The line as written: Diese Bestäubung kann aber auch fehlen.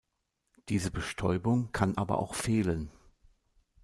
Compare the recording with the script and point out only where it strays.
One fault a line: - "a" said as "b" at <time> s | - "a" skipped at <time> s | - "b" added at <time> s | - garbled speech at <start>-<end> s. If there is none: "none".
none